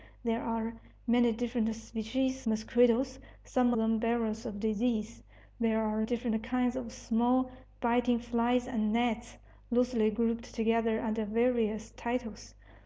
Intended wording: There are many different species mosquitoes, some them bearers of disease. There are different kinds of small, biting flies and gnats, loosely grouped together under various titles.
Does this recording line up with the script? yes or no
yes